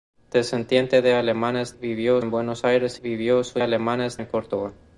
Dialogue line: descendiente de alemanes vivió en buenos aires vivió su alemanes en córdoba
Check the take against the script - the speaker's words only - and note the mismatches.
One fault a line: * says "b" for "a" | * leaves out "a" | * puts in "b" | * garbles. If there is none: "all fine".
all fine